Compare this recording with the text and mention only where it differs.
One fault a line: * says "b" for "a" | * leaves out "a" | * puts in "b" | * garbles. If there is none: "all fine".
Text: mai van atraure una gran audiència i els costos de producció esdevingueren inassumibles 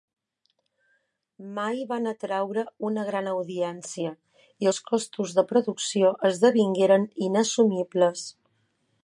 all fine